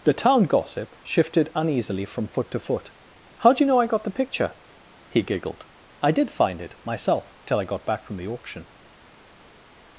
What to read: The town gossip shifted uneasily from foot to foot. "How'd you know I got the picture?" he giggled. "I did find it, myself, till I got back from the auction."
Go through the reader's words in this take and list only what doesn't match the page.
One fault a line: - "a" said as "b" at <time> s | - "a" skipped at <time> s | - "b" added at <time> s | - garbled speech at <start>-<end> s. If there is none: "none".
none